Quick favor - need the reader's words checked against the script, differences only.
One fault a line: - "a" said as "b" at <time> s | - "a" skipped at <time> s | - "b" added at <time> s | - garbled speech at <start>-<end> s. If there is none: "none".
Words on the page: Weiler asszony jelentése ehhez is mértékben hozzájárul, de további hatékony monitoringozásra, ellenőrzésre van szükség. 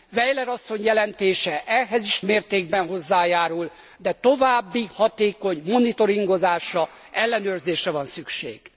none